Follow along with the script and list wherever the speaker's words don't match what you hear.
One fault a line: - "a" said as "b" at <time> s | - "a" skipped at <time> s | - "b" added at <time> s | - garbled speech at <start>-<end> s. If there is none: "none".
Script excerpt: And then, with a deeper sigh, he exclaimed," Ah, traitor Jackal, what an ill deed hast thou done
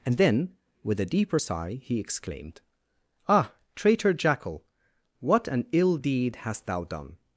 none